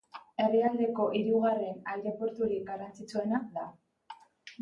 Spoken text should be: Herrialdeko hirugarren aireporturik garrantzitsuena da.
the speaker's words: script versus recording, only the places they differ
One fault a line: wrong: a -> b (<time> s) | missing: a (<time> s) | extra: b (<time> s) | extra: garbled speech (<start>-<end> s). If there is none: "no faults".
no faults